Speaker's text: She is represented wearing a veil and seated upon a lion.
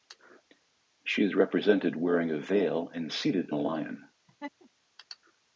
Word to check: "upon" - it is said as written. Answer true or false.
false